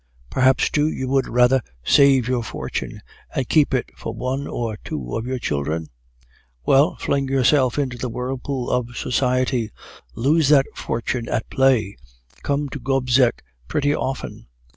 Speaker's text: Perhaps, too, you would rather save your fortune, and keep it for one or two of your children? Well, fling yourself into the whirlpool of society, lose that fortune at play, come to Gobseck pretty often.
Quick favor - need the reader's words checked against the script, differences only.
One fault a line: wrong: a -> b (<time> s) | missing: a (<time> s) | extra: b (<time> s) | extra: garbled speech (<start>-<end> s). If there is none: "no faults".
no faults